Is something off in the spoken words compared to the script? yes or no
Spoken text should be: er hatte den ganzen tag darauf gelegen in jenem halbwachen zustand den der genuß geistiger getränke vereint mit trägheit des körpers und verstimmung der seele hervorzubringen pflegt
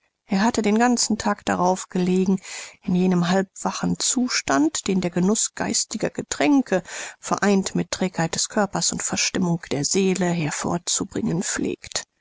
no